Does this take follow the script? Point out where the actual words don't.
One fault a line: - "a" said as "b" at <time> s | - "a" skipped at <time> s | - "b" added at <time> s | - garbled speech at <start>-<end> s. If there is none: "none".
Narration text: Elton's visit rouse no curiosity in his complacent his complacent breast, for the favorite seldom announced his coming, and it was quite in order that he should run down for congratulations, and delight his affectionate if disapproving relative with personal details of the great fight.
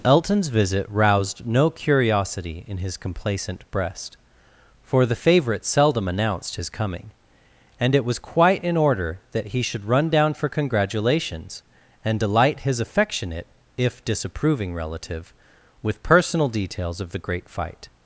- "rouse" said as "roused" at 0.9 s
- "his complacent" skipped at 3.7 s